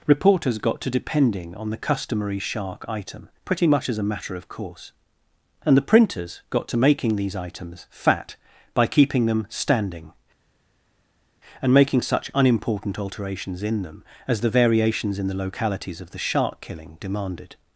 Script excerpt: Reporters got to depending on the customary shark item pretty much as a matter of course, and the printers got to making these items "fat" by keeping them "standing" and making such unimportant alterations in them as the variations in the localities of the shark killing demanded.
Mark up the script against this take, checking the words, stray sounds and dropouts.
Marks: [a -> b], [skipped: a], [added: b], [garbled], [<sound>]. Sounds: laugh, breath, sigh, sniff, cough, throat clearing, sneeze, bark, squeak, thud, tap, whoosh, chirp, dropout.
Reporters got to depending on the customary shark item pretty much as a matter of course, and the printers got to making these items "fat" by keeping them "standing" and making such unimportant alterations in them as the variations in the localities of the shark killing demanded.